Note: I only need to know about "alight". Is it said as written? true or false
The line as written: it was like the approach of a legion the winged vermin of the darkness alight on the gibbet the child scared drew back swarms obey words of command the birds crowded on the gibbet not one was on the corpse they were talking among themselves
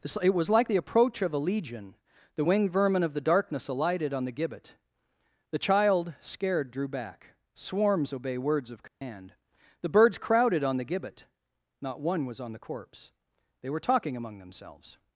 false